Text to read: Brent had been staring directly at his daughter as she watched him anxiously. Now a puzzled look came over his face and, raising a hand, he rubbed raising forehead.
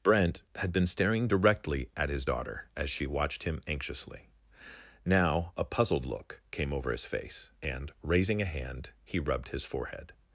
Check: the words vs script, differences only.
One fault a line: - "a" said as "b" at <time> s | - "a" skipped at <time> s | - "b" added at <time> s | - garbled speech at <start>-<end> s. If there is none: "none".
- "raising" said as "his" at 9.5 s